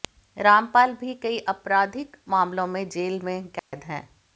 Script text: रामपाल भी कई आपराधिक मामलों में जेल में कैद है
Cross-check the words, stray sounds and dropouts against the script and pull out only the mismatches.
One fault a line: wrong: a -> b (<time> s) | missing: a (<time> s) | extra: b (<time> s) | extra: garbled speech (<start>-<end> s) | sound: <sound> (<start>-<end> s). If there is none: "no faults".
sound: dropout (3.6-3.7 s)